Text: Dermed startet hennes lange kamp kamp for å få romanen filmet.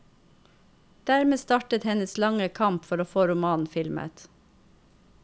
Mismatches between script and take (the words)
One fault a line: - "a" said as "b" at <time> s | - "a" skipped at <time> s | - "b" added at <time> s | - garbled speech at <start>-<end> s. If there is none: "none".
- "kamp" skipped at 2.9 s